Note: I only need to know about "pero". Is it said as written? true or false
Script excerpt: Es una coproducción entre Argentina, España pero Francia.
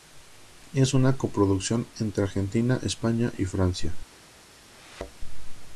false